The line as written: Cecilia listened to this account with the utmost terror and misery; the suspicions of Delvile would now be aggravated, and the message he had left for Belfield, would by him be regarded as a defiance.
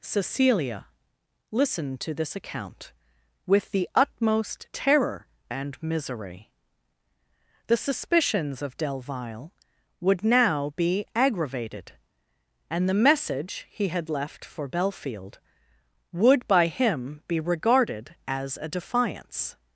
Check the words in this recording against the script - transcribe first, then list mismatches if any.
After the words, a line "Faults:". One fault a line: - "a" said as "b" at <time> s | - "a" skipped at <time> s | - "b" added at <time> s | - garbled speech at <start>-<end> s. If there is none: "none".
Cecilia listened to this account with the utmost terror and misery; the suspicions of Delvile would now be aggravated, and the message he had left for Belfield, would by him be regarded as a defiance.
Faults:
none